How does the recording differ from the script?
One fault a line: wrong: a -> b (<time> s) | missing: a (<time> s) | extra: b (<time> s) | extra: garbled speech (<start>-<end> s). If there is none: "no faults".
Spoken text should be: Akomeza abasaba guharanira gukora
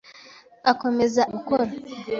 missing: abasaba guharanira (1.2 s)